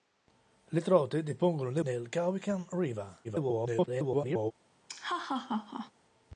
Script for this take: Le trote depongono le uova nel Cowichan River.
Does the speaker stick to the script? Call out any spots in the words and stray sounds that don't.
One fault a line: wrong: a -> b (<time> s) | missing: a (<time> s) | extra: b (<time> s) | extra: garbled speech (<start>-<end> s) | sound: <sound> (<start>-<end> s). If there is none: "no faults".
missing: uova (1.8 s)
extra: garbled speech (3.2-4.5 s)
sound: laugh (4.9-5.9 s)